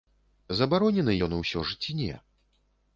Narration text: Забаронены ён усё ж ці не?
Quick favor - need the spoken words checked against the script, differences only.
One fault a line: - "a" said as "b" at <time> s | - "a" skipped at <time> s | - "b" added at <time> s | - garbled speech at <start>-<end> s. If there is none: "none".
none